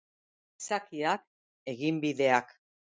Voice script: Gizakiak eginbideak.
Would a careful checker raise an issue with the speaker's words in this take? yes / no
no